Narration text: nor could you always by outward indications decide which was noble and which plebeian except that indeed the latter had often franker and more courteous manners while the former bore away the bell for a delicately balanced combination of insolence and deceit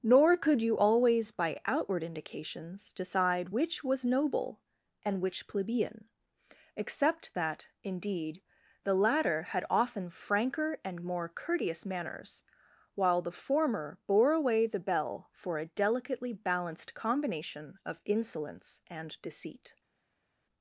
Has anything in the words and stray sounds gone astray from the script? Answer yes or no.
no